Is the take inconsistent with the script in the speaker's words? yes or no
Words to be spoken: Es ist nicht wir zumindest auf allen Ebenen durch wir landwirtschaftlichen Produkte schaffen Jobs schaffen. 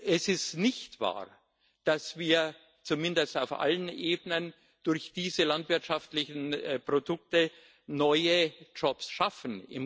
yes